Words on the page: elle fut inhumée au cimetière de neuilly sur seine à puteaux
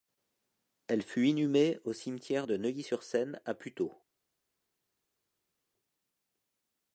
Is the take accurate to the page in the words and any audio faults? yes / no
yes